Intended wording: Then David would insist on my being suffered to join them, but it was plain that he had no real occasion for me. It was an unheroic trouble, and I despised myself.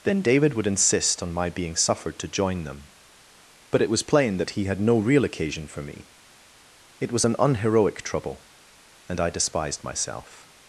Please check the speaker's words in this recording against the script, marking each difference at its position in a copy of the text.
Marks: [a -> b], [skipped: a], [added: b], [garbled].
Then David would insist on my being suffered to join them, but it was plain that he had no real occasion for me. It was an unheroic trouble, and I despised myself.